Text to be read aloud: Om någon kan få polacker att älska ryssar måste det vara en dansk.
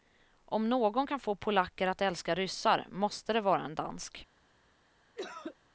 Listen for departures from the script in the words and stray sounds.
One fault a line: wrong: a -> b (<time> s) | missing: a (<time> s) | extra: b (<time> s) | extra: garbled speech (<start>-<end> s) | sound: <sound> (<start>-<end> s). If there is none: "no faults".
sound: cough (5.2-5.6 s)